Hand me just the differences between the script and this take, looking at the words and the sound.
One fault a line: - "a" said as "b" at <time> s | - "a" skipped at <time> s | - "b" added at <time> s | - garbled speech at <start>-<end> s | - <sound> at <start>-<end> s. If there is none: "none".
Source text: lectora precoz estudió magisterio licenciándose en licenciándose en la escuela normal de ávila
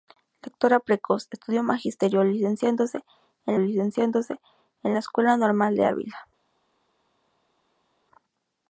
none